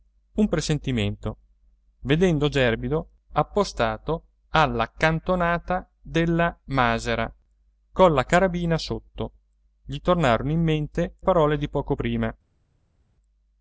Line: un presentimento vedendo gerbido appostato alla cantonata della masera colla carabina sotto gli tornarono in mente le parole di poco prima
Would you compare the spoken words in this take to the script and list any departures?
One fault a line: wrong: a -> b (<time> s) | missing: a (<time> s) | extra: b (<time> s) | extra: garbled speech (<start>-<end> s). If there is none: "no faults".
missing: le (11.2 s)